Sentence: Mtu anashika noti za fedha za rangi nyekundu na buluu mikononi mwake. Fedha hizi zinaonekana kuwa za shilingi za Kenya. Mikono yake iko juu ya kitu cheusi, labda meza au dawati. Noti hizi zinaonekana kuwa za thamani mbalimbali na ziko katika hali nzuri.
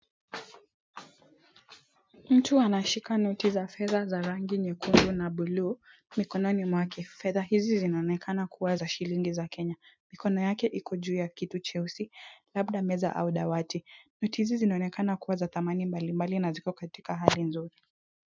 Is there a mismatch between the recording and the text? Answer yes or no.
no